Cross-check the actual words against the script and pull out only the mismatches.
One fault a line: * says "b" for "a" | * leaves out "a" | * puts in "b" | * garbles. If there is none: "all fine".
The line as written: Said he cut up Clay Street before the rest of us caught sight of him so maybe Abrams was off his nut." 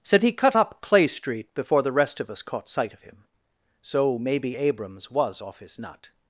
all fine